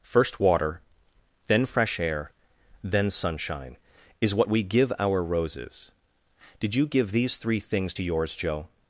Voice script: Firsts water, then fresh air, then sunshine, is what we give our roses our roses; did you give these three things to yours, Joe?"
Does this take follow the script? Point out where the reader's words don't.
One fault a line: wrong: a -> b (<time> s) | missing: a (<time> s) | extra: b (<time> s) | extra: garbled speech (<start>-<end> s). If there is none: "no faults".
wrong: Firsts -> First (0.0 s)
missing: our roses (5.9 s)